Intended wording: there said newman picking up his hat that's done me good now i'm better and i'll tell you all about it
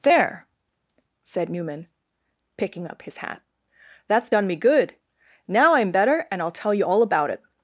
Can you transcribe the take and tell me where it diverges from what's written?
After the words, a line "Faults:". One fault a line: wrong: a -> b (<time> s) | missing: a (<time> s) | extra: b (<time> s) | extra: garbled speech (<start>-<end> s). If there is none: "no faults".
there said newman picking up his hat that's done me good now i'm better and i'll tell you all about it
Faults:
no faults